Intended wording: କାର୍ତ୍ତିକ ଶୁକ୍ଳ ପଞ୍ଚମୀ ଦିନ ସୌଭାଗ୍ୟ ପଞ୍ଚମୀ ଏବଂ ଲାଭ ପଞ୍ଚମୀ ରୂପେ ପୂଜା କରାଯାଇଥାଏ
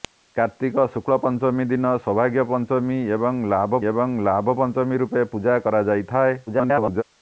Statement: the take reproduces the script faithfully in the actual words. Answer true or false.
false